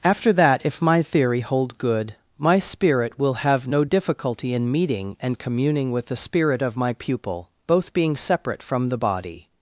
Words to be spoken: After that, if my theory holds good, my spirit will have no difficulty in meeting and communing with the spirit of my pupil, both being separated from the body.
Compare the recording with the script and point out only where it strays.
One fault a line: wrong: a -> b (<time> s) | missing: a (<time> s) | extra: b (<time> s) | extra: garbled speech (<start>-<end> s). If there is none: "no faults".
wrong: holds -> hold (1.4 s)
wrong: separated -> separate (8.2 s)